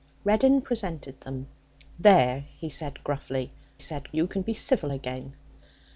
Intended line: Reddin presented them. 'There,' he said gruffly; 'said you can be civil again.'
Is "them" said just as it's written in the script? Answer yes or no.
yes